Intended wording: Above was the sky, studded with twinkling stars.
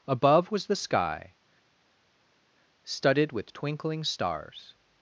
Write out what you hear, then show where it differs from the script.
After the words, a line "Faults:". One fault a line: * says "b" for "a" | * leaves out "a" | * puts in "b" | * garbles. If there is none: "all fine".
Above was the sky, studded with twinkling stars.
Faults:
all fine